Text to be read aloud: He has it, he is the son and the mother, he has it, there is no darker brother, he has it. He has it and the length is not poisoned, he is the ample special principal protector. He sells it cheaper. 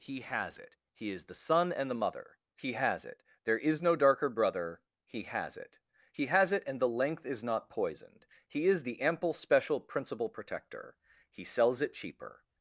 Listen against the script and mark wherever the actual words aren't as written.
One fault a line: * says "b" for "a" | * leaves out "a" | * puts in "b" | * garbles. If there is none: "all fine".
all fine